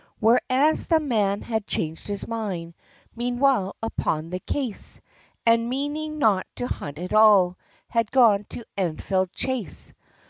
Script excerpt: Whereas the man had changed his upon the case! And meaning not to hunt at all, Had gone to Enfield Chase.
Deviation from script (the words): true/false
true